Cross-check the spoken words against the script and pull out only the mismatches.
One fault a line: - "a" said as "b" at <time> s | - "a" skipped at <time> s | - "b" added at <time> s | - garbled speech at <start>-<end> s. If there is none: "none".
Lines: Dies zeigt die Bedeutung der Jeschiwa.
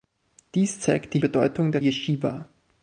none